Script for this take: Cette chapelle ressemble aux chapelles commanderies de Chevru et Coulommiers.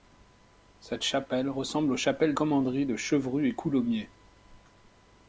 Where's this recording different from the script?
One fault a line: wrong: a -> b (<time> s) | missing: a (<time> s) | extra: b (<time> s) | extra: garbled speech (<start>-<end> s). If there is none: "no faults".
no faults